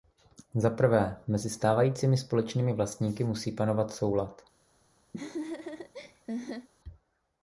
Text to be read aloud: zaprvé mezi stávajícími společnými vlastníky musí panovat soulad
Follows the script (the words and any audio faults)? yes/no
no